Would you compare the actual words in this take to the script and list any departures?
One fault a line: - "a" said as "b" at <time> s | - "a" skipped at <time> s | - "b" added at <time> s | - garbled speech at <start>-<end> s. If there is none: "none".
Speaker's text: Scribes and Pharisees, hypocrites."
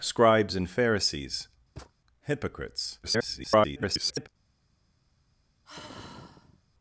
- garbled speech at 3.0-4.3 s